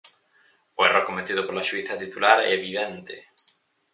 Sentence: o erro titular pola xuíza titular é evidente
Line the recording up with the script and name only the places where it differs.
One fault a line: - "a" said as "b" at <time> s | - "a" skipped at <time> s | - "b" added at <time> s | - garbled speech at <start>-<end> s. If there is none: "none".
- "titular" said as "cometido" at 1.1 s